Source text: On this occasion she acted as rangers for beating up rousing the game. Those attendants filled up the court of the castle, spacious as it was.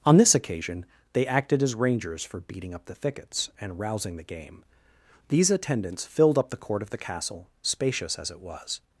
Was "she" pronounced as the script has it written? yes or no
no